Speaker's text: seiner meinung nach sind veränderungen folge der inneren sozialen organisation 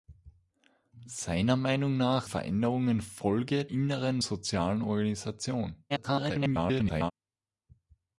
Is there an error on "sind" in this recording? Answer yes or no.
yes